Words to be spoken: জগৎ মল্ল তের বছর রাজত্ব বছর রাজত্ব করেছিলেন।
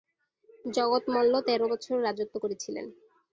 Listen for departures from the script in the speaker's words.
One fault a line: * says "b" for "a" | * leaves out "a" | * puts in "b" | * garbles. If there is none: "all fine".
* leaves out "বছর রাজত্ব"